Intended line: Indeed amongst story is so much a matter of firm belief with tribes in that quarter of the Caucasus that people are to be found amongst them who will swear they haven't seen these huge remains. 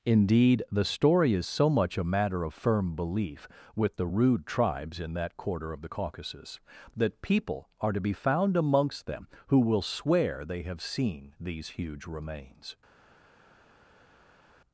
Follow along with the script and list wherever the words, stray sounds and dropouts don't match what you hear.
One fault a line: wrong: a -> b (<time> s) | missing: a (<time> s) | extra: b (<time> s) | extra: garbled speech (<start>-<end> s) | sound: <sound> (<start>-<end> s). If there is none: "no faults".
wrong: amongst -> the (0.7 s)
extra: the rude (4.0 s)
wrong: haven't -> have (10.6 s)